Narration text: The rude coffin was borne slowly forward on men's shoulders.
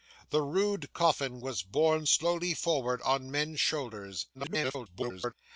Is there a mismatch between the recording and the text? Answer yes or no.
yes